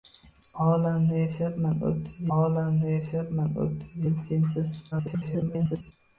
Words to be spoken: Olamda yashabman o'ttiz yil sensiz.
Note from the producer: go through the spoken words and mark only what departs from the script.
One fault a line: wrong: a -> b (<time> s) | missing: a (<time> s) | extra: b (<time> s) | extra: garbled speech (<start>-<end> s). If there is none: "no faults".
extra: olamda yashabman o'ttiz (2.4 s)
extra: garbled speech (4.9-5.9 s)